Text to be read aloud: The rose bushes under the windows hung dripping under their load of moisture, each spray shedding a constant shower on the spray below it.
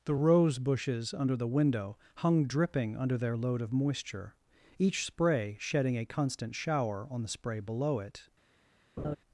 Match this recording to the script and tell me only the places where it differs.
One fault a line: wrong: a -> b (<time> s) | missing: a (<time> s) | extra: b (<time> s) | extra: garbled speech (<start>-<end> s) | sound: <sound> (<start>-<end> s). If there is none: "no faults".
wrong: windows -> window (1.5 s)
sound: laugh (9.0-9.2 s)